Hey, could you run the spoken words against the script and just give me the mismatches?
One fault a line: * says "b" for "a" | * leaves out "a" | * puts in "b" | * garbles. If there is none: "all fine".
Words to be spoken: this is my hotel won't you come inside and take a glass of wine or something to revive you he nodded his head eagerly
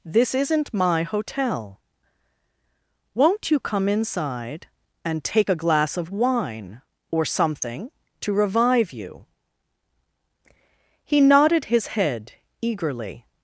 * says "isn't" for "is"